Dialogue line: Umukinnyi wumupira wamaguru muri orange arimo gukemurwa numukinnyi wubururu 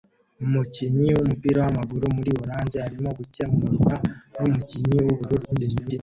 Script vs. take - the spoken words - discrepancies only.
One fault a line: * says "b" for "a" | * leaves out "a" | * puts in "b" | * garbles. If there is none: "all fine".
* garbles